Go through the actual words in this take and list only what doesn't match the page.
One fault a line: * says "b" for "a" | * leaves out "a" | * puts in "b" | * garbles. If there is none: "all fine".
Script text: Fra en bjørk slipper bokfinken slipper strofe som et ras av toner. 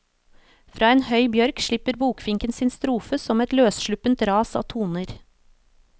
* puts in "høy"
* says "sin" for "slipper"
* puts in "løssluppent"